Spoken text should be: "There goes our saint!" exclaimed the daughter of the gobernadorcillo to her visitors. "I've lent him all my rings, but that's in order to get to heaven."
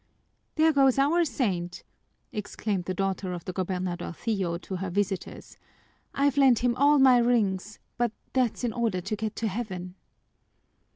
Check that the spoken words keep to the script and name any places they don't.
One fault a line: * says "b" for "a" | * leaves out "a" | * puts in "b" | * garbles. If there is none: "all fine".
all fine